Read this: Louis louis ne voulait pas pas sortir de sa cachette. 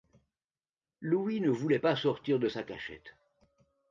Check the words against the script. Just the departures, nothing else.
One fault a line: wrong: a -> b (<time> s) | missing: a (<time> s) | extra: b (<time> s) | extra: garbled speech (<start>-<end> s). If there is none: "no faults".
missing: louis (1.4 s)
missing: pas (2.0 s)